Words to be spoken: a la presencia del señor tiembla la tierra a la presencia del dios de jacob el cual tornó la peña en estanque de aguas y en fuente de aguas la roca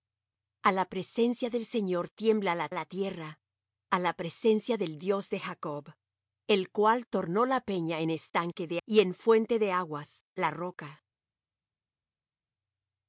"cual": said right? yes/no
yes